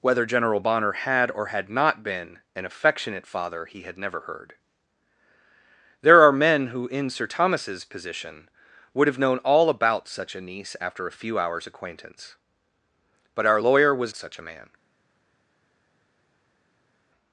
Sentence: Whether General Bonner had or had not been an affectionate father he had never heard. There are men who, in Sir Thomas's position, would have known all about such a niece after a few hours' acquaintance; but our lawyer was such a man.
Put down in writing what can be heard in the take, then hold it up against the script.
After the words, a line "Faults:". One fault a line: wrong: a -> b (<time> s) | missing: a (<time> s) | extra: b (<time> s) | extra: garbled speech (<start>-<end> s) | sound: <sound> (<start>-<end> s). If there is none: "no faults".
Whether General Bonner had or had not been an affectionate father he had never heard. There are men who, in Sir Thomas's position, would have known all about such a niece after a few hours' acquaintance; but our lawyer was such a man.
Faults:
no faults